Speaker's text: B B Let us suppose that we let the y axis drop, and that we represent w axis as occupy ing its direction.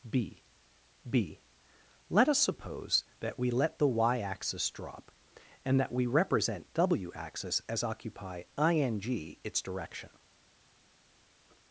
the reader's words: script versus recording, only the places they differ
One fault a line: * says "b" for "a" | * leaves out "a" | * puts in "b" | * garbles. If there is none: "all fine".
all fine